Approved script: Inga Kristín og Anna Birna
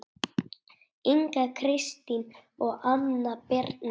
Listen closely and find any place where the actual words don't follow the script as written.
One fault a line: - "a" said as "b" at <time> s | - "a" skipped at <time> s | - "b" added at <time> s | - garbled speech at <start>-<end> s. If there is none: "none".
none